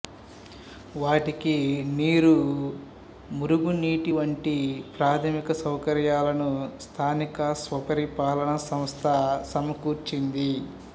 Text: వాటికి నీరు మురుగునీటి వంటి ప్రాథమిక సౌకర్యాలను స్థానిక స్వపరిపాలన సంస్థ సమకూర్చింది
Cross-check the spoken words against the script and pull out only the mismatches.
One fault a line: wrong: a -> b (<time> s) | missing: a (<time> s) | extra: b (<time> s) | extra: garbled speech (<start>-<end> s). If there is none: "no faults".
no faults